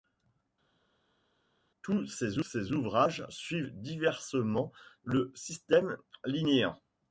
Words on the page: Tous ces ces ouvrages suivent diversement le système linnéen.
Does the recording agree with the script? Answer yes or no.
yes